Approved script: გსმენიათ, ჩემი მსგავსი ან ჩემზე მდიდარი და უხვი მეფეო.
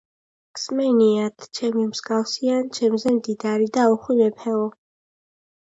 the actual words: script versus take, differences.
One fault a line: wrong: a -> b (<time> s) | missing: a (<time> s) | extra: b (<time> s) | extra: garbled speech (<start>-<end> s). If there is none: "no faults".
no faults